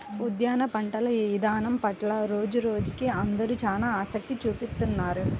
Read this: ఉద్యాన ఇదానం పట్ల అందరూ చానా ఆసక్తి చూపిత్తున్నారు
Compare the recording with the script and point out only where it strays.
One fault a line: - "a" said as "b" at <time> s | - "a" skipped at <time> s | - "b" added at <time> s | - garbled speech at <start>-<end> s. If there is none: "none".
- "పంటల" added at 0.7 s
- "రోజురోజుకీ" added at 2.3 s